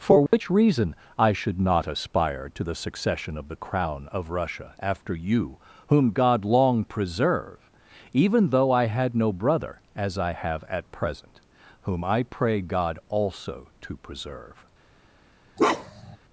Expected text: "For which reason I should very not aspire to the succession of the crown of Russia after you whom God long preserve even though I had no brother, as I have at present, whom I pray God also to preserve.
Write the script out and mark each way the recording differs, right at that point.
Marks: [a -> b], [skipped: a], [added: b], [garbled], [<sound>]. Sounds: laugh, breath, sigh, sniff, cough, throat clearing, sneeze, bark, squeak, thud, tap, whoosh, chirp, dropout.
"For which [dropout] reason I should [skipped: very] not aspire to the succession of the crown of Russia after you whom God long preserve even though I had no brother, as I have at present, whom I pray God also to preserve. [bark]